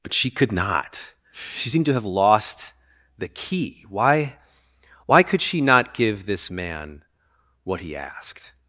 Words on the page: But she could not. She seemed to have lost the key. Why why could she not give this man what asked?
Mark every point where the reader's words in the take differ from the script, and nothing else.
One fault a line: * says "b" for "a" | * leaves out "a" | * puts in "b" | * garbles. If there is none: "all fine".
* puts in "he"